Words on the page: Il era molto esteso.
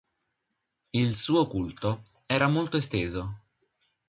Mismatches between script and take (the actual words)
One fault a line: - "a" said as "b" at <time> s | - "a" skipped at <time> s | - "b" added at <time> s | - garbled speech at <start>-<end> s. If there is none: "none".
- "suo culto" added at 1.1 s